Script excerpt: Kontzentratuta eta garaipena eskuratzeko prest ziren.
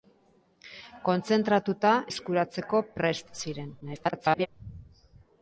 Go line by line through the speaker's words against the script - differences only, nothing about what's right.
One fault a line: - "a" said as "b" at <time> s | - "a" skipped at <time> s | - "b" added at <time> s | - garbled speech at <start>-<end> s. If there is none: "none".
- "eta garaipena" skipped at 1.9 s
- garbled speech at 3.8-4.5 s